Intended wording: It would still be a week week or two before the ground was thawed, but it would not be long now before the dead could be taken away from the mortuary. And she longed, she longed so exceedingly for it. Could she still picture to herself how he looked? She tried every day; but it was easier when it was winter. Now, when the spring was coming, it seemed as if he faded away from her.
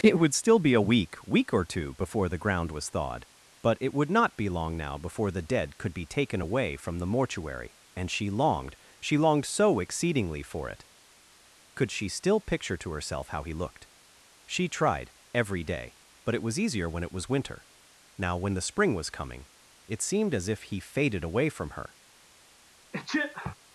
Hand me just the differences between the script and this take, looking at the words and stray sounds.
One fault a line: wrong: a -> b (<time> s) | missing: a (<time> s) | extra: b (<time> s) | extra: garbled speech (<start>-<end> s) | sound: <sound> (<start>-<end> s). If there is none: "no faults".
sound: sneeze (22.9-23.5 s)